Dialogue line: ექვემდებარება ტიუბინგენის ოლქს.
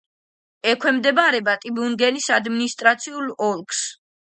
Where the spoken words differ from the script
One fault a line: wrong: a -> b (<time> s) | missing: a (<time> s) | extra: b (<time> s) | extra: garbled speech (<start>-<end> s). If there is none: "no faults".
extra: ადმინისტრაციულ (2.4 s)